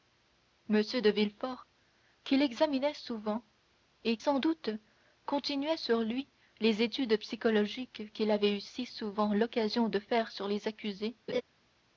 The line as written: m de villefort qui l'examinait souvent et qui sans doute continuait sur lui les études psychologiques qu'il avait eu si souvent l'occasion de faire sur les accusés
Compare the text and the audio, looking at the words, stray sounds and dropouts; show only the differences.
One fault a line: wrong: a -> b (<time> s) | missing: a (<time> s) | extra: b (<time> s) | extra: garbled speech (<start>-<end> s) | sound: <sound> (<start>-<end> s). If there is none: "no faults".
missing: qui (4.2 s)
sound: laugh (11.3-11.4 s)